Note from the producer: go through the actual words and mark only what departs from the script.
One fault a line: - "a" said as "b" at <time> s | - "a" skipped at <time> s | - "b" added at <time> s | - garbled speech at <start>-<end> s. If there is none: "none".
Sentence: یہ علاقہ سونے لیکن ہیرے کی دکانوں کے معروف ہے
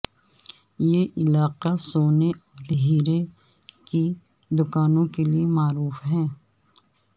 - "لیکن" said as "اور" at 2.3 s
- "لیے" added at 5.2 s